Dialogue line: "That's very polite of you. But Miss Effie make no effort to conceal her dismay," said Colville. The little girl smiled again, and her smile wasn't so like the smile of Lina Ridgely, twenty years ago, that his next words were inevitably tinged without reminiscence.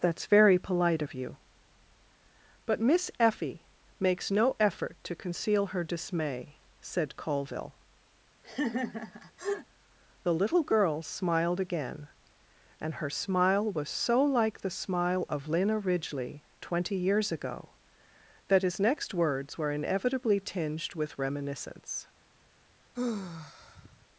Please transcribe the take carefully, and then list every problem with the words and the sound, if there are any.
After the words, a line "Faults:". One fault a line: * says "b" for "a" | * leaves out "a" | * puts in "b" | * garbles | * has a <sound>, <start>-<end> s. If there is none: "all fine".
"That's very polite of you. But Miss Effie makes no effort to conceal her dismay," said Colville. The little girl smiled again, and her smile was so like the smile of Lina Ridgely, twenty years ago, that his next words were inevitably tinged with reminiscence.
Faults:
* says "makes" for "make"
* has a laugh, 8.4-9.7 s
* says "was" for "wasn't"
* says "with" for "without"
* has a sigh, 22.9-24.1 s